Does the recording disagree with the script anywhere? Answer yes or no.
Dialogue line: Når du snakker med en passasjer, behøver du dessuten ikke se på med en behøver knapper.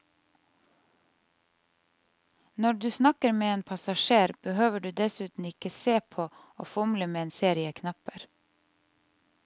yes